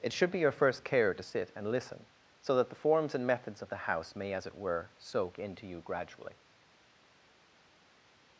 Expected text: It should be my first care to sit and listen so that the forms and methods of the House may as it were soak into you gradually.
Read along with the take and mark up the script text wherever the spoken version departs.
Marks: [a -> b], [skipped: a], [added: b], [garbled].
It should be [my -> your] first care to sit and listen so that the forms and methods of the House may as it were soak into you gradually.